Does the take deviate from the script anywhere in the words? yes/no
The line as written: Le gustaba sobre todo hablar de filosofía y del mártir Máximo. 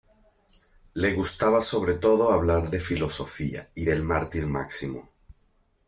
no